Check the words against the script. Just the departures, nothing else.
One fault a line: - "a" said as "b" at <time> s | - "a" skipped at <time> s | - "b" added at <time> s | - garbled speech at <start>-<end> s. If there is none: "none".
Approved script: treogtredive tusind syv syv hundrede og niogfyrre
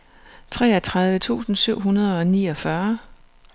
- "syv" skipped at 1.8 s